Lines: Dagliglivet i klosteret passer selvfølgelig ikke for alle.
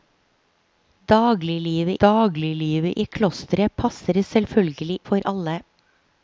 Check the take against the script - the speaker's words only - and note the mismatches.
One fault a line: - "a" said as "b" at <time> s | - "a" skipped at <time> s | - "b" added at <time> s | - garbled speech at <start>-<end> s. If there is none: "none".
- "dagliglivet" added at 2.0 s
- "ikke" skipped at 5.0 s